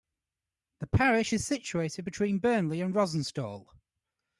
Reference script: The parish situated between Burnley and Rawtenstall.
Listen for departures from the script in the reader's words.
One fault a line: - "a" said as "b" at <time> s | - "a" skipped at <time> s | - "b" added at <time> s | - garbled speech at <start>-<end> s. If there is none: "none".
- "is" added at 1.3 s